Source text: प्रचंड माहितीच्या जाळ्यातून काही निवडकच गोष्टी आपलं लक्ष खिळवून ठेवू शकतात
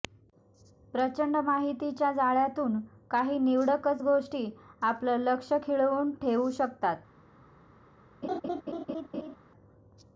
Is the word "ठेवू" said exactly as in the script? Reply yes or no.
yes